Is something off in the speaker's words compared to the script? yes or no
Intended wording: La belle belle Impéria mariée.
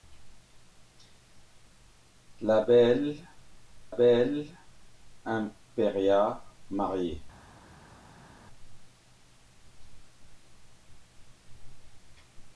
no